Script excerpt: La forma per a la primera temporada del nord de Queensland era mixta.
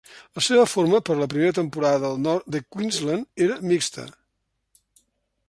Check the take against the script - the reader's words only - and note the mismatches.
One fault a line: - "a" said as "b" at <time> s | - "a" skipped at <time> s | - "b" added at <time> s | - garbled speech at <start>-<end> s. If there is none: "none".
- "seva" added at 0.4 s